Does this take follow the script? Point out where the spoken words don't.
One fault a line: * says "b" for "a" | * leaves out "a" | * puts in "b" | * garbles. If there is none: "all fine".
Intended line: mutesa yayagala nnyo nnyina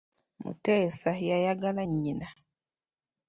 * leaves out "nnyo"